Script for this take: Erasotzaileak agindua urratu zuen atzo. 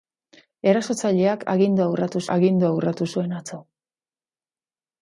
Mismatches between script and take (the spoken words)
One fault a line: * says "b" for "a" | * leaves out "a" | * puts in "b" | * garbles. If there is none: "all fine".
* puts in "agindua urratu"